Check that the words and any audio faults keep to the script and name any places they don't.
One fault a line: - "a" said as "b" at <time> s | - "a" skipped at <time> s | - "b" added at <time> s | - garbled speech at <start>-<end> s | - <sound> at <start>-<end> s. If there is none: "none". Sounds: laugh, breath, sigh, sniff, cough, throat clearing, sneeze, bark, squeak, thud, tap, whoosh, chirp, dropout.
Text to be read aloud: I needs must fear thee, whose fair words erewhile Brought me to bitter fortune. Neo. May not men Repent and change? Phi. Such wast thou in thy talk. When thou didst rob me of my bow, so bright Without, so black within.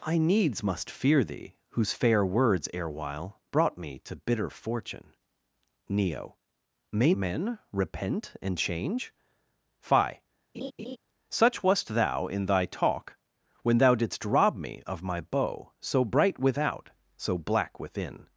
- "not" skipped at 7.1 s
- laugh at 10.5-11.0 s